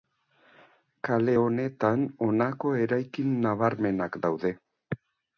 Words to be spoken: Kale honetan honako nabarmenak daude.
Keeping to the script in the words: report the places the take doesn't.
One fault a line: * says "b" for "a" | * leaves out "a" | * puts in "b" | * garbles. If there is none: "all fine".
* puts in "eraikin"